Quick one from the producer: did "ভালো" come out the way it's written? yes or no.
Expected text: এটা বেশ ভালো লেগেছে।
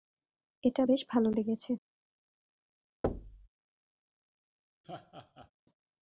yes